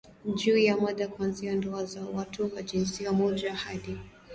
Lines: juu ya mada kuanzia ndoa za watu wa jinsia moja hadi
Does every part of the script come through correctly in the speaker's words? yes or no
yes